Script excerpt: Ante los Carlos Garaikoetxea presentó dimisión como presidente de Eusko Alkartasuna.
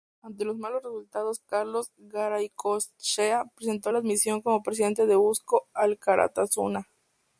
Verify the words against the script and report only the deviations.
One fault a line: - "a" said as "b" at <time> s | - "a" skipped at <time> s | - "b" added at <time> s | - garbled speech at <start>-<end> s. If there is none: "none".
- "malos resultados" added at 0.6 s
- "la" added at 3.9 s